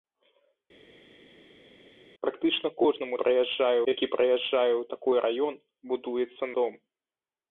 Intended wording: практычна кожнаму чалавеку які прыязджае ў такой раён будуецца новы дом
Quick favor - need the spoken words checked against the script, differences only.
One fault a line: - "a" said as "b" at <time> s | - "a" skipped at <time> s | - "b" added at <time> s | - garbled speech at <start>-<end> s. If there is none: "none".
- "чалавеку" said as "прыязджае" at 3.2 s
- "новы" skipped at 6.4 s